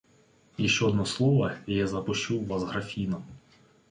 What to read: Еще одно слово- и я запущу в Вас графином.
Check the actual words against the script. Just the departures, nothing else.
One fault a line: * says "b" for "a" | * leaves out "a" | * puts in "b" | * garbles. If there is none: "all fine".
all fine